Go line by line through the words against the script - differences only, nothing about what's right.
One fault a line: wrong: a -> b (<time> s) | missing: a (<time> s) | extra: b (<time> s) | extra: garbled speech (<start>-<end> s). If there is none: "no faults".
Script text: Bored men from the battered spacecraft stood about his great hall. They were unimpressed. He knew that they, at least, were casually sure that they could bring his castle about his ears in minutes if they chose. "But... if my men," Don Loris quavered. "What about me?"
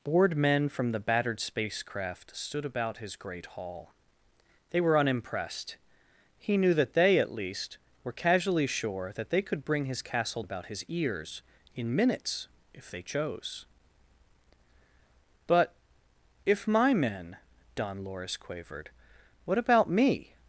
no faults